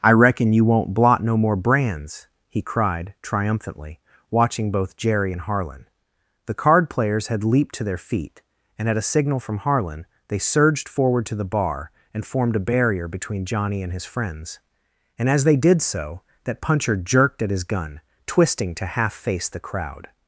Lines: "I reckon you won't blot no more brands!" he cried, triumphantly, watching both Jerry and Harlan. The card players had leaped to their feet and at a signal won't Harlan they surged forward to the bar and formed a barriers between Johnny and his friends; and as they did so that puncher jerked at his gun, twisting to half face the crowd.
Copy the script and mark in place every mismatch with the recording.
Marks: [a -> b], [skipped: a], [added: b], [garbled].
"I reckon you won't blot no more brands!" he cried, triumphantly, watching both Jerry and Harlan. The card players had leaped to their feet and at a signal [won't -> from] Harlan they surged forward to the bar and formed a [barriers -> barrier] between Johnny and his friends; and as they did so that puncher jerked at his gun, twisting to half face the crowd.